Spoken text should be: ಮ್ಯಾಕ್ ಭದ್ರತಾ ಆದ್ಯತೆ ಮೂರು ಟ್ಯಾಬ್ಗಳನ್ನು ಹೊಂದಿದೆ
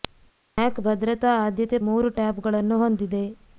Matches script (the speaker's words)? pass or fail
pass